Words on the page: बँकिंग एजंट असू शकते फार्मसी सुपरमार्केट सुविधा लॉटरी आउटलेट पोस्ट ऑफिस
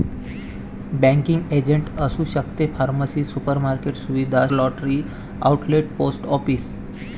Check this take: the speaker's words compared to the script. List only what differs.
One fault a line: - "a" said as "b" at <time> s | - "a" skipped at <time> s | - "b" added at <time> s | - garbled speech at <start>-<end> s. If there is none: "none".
none